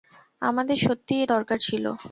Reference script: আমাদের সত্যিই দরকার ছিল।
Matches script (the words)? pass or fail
pass